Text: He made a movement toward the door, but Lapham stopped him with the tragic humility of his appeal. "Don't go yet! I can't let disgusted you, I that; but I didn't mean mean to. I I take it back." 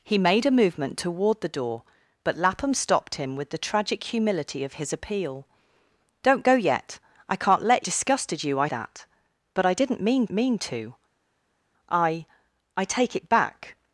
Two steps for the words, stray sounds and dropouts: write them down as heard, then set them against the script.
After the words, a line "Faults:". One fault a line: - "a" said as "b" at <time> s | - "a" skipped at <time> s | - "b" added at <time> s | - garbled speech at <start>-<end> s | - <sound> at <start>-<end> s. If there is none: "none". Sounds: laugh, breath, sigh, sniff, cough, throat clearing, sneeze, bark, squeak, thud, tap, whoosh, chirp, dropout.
He made a movement toward the door, but Lapham stopped him with the tragic humility of his appeal. "Don't go yet! I can't let disgusted you, I that; but I didn't mean mean to. I I take it back."
Faults:
none